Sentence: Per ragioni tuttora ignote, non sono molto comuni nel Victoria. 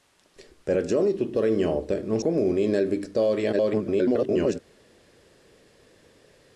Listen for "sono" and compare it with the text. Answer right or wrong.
wrong